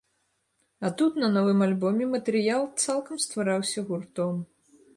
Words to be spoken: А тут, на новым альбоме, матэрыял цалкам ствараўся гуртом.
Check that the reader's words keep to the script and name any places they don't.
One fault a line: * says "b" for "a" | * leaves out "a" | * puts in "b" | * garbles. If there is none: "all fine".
all fine